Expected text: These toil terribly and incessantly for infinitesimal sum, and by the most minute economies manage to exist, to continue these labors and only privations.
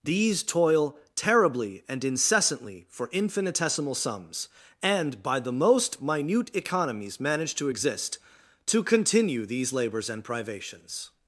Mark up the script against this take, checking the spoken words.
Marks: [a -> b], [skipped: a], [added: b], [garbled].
These toil terribly and incessantly for infinitesimal [sum, -> sums] and by the most minute economies manage to exist, to continue these labors and [skipped: only] privations.